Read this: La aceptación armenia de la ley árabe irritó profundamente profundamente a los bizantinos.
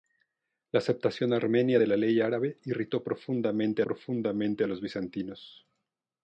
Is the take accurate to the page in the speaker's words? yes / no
yes